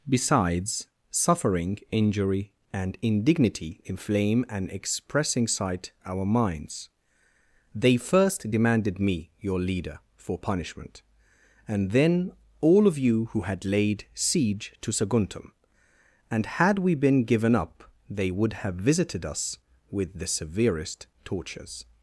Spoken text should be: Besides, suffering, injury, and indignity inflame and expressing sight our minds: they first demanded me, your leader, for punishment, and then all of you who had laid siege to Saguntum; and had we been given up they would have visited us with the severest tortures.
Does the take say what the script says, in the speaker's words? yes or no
yes